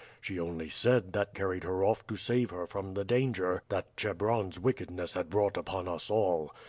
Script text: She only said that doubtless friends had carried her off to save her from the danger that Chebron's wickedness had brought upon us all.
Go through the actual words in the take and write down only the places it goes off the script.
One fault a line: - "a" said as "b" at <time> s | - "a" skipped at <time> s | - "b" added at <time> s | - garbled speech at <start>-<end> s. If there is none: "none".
- "doubtless friends had" skipped at 1.4 s